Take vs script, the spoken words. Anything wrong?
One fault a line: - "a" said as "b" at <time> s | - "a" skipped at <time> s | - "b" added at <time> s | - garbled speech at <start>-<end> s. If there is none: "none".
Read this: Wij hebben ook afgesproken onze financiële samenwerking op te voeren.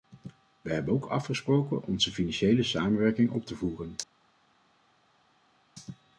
none